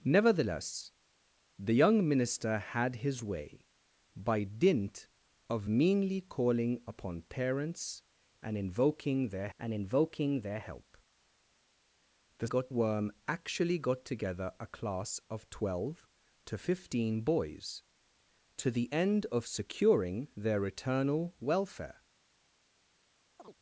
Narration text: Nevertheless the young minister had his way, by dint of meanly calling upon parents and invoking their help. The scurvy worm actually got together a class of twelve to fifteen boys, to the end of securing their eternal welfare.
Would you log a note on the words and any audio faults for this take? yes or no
yes